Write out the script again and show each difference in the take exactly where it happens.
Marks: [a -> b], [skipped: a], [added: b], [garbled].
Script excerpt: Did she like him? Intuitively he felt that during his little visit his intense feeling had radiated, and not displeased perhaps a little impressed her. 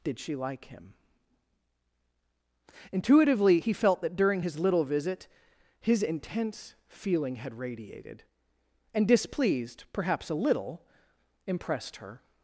Did she like him? Intuitively he felt that during his little visit his intense feeling had radiated, and [skipped: not] displeased perhaps a little impressed her.